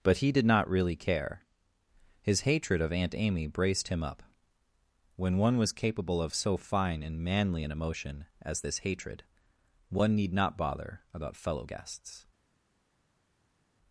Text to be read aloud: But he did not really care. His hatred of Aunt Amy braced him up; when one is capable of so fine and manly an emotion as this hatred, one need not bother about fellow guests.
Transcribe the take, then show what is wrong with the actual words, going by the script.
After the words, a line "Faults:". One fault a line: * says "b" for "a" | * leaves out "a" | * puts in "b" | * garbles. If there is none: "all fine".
But he did not really care. His hatred of Aunt Amy braced him up; when one was capable of so fine and manly an emotion as this hatred, one need not bother about fellow guests.
Faults:
* says "was" for "is"